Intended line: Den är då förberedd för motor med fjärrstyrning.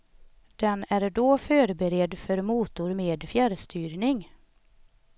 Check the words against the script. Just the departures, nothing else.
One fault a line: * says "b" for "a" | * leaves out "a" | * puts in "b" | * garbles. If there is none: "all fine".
all fine